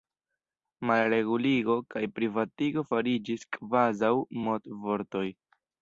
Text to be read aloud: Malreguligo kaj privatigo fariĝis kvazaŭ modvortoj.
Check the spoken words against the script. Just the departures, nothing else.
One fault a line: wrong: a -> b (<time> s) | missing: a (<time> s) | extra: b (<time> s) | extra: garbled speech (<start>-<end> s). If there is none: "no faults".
no faults